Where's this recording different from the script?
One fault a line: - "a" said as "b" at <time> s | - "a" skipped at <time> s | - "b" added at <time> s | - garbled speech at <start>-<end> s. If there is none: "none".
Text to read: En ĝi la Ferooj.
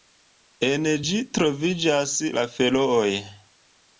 - "troviĝas" added at 1.4 s